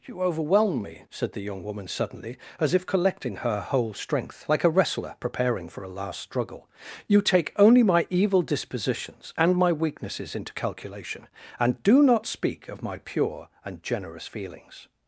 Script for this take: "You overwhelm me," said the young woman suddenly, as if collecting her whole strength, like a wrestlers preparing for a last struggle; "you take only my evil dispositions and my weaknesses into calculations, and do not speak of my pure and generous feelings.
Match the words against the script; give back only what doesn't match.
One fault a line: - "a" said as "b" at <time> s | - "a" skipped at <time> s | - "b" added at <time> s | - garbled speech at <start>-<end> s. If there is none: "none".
- "wrestlers" said as "wrestler" at 4.7 s
- "calculations" said as "calculation" at 10.5 s